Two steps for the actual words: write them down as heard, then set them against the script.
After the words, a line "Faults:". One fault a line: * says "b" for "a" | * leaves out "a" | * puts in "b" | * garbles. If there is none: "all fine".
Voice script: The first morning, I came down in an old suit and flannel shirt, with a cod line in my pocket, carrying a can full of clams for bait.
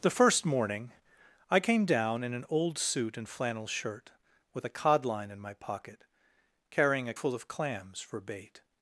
The first morning, I came down in an old suit and flannel shirt, with a cod line in my pocket, carrying a full of clams for bait.
Faults:
* leaves out "can"